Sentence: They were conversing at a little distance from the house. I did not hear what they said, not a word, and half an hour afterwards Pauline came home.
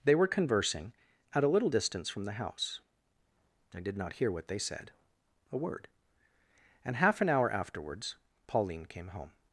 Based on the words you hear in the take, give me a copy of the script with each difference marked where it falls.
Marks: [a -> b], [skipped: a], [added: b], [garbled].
They were conversing at a little distance from the house. I did not hear what they said, [skipped: not] a word, and half an hour afterwards Pauline came home.